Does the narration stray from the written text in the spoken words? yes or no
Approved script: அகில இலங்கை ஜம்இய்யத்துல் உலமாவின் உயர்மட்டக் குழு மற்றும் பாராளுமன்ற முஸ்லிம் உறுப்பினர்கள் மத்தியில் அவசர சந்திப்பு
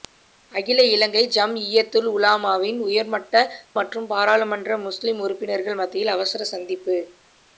yes